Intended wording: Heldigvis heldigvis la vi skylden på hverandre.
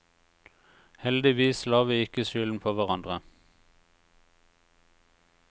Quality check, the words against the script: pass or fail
fail